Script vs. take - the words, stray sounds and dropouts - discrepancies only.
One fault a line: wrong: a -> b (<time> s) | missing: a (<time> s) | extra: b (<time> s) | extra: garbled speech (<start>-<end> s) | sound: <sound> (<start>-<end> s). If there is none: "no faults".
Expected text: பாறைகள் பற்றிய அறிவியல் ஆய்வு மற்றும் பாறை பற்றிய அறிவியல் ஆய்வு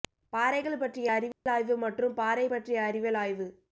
sound: dropout (1.3-1.5 s)